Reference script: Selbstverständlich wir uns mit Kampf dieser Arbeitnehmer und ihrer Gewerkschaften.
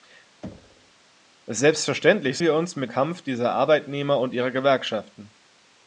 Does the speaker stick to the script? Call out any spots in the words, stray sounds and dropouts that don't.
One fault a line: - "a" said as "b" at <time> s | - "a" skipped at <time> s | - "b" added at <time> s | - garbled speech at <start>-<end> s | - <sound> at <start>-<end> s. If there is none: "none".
- thud at 0.4-0.9 s